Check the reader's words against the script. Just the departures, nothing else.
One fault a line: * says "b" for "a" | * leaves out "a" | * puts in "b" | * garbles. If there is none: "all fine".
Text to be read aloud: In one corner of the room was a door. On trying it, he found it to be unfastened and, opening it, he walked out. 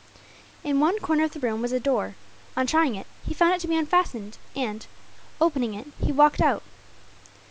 all fine